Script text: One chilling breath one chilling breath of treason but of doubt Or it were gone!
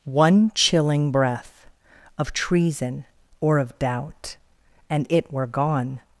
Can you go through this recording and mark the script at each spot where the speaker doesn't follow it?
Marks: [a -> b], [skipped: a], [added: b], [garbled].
One chilling breath [skipped: one chilling breath] of treason [but -> or] of doubt [Or -> And] it were gone!